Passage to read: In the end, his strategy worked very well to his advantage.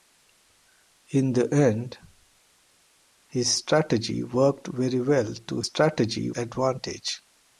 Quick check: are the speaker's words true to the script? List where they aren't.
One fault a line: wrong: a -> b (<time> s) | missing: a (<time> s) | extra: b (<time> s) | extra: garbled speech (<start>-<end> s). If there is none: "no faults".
wrong: his -> strategy (5.6 s)